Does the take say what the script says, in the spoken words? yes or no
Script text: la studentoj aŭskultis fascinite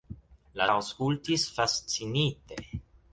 no